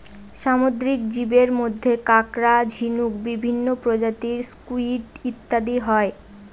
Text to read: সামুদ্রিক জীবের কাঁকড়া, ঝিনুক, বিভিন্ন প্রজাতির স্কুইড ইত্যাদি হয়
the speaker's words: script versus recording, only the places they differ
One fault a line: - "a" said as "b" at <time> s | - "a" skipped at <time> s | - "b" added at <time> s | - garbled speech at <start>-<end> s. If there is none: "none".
- "মধ্যে" added at 1.6 s